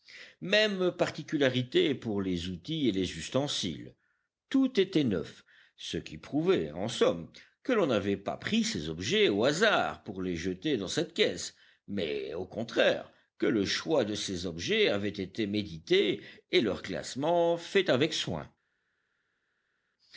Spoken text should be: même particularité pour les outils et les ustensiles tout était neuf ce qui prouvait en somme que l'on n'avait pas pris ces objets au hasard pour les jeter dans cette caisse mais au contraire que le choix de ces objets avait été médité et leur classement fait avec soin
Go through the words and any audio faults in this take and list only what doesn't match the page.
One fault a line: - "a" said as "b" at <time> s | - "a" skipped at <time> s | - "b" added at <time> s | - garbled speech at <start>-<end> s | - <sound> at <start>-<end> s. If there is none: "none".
none